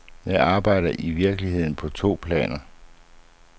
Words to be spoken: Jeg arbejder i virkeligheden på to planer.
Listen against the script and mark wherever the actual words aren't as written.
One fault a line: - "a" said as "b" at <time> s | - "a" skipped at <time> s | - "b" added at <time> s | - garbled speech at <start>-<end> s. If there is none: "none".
none